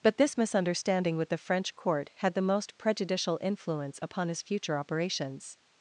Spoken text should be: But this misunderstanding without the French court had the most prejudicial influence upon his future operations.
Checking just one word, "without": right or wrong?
wrong